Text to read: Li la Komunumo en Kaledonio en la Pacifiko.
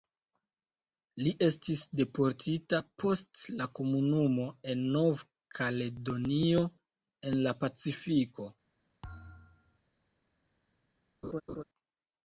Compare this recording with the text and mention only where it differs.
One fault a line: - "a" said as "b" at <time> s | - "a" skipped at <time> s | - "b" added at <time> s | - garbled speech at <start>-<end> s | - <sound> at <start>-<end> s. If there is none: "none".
- "estis deportita post" added at 1.5 s
- "Nov" added at 5.0 s
- thud at 9.0-9.8 s
- laugh at 11.2-11.6 s